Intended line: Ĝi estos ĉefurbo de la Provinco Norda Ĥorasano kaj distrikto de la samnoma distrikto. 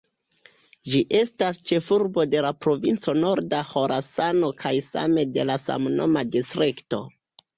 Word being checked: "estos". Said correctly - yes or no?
no